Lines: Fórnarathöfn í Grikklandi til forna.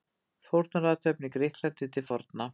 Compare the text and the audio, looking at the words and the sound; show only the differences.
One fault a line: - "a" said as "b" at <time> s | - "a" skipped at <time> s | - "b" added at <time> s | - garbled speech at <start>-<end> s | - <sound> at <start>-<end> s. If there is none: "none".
none